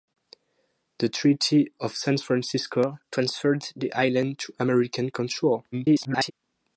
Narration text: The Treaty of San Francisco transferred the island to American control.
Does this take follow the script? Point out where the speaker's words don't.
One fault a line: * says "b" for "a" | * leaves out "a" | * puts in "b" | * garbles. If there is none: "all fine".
* garbles